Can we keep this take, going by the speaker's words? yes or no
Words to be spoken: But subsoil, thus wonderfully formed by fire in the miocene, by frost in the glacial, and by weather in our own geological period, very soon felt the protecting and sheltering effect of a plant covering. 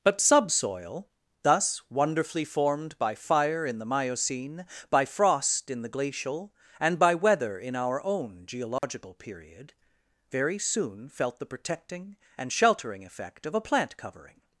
yes